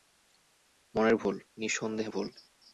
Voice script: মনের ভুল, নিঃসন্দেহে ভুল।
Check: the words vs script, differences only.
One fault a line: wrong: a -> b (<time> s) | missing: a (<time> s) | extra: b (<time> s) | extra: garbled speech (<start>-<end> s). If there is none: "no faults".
no faults